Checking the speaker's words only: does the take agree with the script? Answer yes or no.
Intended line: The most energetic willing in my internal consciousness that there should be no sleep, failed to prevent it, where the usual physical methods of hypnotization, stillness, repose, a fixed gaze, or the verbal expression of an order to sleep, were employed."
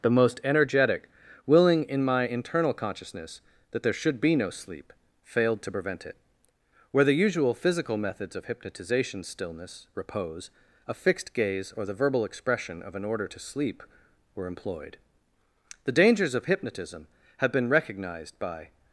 no